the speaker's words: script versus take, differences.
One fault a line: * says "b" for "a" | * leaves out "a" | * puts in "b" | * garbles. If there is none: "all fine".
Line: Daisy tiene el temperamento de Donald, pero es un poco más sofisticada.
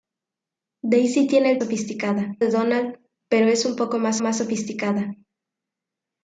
* says "sofisticada" for "temperamento"
* puts in "más"